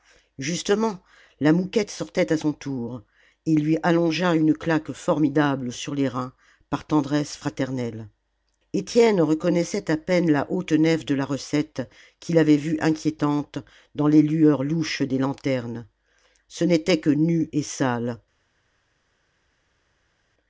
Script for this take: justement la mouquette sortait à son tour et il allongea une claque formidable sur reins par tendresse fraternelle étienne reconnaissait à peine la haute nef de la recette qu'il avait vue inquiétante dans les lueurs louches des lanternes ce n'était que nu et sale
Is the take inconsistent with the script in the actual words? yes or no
yes